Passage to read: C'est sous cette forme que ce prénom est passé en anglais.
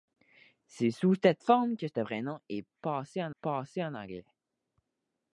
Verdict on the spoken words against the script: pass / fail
fail